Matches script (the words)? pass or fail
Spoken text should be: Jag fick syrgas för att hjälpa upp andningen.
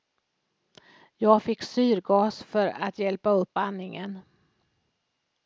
pass